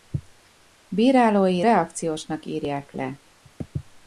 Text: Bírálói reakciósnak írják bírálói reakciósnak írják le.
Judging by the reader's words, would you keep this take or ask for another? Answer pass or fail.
fail